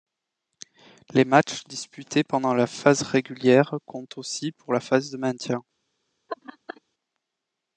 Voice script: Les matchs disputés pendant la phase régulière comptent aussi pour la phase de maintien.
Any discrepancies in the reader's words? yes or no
no